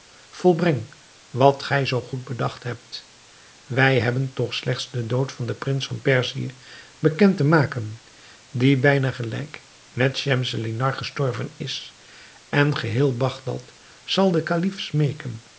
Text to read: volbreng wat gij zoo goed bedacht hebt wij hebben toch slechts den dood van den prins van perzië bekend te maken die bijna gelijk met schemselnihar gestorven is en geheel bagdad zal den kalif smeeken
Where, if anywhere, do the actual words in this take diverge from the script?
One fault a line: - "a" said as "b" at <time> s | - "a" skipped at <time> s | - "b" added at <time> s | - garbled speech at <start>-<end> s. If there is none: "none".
none